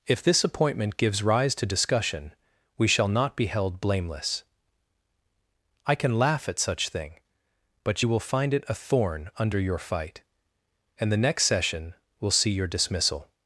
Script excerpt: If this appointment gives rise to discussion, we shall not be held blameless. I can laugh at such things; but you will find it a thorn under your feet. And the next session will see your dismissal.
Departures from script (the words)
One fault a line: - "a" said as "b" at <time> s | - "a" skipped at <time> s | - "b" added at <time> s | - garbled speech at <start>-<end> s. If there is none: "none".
- "things" said as "thing" at 6.9 s
- "feet" said as "fight" at 9.8 s